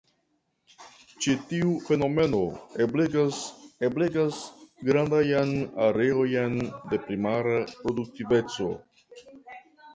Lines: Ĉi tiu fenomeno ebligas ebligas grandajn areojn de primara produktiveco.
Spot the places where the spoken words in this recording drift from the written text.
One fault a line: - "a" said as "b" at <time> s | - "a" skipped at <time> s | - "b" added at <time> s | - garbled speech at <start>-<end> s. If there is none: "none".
none